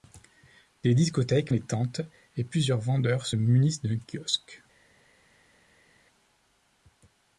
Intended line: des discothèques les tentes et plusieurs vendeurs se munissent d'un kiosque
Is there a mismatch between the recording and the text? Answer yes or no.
no